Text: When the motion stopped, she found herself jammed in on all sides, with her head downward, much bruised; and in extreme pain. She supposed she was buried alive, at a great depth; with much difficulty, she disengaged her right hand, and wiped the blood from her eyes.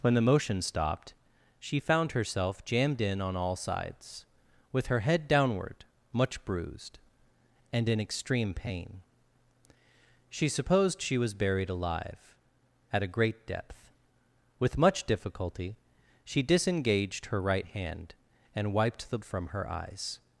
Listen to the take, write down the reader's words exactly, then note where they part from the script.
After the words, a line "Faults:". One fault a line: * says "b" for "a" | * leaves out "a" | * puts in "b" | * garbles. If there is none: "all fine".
When the motion stopped, she found herself jammed in on all sides, with her head downward, much bruised; and in extreme pain. She supposed she was buried alive, at a great depth; with much difficulty, she disengaged her right hand, and wiped the from her eyes.
Faults:
* leaves out "blood"